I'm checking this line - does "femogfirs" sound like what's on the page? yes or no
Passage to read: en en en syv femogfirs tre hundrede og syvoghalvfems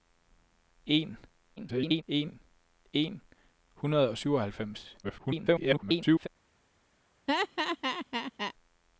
no